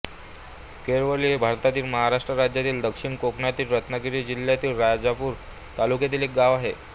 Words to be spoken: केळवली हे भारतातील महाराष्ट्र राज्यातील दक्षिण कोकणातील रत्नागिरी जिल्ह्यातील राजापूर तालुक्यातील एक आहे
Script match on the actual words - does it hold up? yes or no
no